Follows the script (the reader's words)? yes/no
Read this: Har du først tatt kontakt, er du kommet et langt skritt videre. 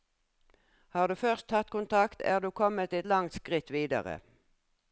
yes